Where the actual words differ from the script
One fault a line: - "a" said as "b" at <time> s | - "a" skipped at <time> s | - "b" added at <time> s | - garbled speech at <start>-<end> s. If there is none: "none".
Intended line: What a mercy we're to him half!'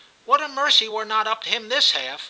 - "not up" added at 1.0 s
- "this" added at 1.7 s